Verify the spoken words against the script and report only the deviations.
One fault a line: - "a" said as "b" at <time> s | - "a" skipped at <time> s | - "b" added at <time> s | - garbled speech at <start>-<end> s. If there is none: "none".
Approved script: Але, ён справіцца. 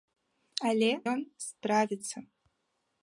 none